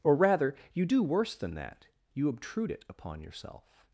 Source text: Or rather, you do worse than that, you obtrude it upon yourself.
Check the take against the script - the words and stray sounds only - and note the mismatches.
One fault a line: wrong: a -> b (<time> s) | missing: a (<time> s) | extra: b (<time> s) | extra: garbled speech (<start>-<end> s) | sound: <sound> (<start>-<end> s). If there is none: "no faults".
no faults